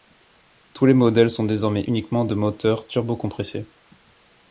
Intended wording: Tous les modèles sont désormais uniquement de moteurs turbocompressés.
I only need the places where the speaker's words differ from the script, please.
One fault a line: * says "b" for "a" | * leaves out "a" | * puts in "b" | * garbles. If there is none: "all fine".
all fine